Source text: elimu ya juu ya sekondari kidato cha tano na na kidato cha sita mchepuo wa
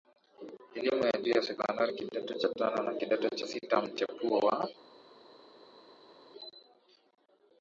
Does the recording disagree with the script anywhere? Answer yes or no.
yes